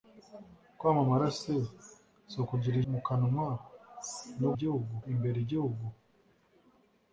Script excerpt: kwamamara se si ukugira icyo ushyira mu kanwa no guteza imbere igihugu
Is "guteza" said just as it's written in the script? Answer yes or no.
no